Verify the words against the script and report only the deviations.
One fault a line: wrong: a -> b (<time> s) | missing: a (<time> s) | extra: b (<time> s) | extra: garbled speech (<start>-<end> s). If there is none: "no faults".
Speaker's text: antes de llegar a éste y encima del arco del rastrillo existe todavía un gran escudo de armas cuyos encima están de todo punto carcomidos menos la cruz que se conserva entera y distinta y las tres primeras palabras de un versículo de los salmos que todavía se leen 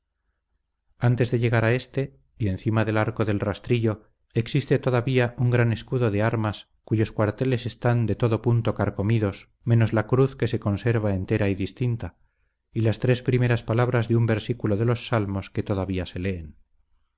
wrong: encima -> cuarteles (7.1 s)